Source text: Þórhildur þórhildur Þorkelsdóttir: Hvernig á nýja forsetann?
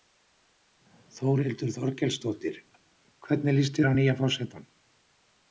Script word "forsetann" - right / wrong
right